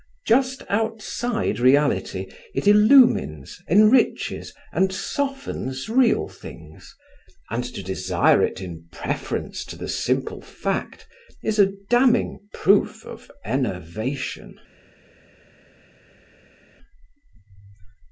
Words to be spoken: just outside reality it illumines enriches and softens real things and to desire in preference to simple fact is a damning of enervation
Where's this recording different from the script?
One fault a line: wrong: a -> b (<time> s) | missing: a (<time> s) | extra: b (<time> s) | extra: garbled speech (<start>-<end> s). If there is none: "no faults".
extra: it (8.4 s)
extra: the (9.8 s)
extra: proof (12.5 s)